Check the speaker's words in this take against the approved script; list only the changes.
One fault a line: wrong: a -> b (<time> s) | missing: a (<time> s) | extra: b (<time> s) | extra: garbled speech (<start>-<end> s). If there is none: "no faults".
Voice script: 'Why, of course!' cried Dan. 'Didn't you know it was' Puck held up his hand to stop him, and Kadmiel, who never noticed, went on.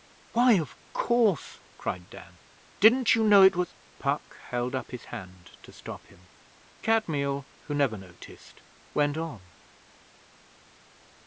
missing: and (6.3 s)